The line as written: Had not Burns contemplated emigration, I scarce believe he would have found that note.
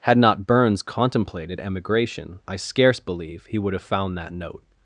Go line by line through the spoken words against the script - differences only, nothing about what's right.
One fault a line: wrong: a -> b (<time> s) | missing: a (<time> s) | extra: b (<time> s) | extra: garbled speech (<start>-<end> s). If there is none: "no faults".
no faults